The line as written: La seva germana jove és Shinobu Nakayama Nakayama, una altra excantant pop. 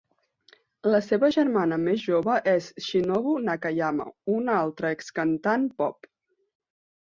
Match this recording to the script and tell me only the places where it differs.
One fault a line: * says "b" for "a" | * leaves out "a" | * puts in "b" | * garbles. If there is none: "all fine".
* puts in "més"
* leaves out "Nakayama"